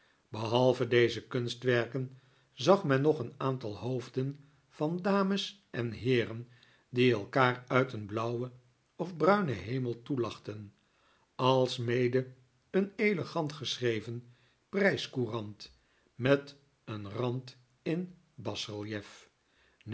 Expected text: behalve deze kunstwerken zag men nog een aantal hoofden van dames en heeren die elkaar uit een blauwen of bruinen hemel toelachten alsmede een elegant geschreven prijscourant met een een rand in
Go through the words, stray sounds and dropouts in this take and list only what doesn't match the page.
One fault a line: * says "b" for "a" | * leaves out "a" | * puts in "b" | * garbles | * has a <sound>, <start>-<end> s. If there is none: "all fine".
* leaves out "een"